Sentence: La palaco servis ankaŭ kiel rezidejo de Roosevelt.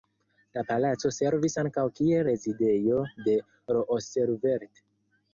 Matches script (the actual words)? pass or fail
pass